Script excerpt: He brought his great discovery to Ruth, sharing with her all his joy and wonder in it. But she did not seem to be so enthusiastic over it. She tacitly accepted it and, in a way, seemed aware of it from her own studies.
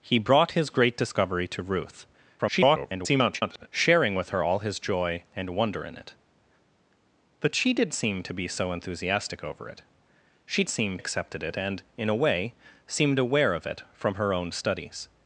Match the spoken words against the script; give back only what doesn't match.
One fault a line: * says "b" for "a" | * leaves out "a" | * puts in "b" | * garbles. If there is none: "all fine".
* garbles
* leaves out "not"
* says "seem" for "tacitly"